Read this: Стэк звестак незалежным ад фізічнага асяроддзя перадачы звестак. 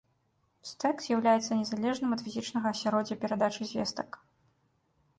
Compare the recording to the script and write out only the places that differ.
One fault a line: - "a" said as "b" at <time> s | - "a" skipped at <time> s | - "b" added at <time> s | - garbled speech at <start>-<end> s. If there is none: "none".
- "звестак" said as "з'яўляецца" at 1.1 s